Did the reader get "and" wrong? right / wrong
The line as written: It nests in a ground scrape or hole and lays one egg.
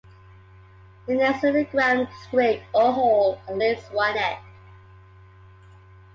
right